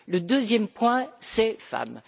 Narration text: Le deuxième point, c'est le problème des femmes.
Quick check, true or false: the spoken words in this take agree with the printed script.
false